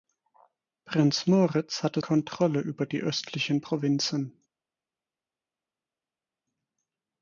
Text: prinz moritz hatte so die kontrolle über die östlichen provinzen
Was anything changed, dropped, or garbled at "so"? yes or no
yes